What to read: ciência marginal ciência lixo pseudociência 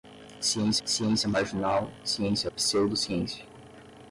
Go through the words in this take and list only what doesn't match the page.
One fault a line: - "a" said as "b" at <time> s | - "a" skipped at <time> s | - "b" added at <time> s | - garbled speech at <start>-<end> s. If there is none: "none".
- "ciência" added at 0.9 s
- "lixo" skipped at 2.5 s